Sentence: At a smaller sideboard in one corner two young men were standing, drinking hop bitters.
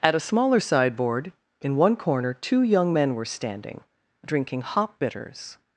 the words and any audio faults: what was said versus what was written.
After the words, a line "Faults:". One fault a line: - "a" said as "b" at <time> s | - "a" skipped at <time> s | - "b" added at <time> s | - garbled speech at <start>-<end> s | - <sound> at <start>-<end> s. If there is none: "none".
At a smaller sideboard in one corner two young men were standing, drinking hop bitters.
Faults:
none